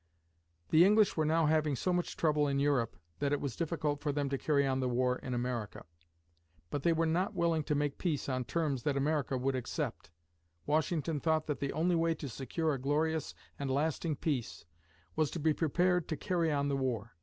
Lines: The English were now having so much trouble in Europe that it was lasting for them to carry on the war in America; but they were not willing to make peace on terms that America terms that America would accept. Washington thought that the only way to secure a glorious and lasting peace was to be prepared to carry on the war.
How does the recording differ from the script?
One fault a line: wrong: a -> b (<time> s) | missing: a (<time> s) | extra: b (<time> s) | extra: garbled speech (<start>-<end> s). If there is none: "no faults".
wrong: lasting -> difficult (3.5 s)
missing: terms that America (9.4 s)